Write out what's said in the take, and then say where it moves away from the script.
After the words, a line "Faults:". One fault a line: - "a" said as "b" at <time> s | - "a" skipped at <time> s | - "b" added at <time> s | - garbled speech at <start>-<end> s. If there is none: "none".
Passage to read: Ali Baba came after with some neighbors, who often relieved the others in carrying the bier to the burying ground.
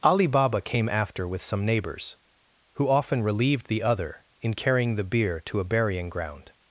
Ali Baba came after with some neighbors, who often relieved the other in carrying the bier to a burying ground.
Faults:
- "others" said as "other" at 3.8 s
- "the" said as "a" at 5.6 s